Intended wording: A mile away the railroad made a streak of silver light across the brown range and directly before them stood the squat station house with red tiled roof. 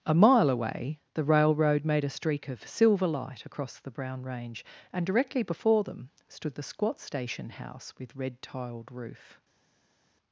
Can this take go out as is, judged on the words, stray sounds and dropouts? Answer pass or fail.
pass